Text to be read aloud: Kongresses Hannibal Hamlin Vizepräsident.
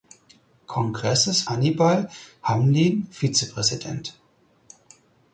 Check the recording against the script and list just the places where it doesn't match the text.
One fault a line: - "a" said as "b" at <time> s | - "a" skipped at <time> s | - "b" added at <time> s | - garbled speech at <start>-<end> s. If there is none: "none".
none